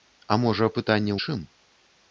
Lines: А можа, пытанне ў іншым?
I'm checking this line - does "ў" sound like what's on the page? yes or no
no